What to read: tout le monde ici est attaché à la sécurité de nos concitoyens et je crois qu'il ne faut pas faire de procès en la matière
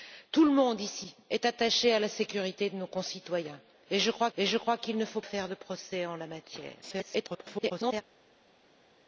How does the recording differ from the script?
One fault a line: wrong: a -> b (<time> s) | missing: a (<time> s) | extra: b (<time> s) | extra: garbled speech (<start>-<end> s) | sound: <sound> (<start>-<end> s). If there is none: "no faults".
extra: et je crois (4.4 s)
missing: pas (5.2 s)
extra: garbled speech (6.8-8.0 s)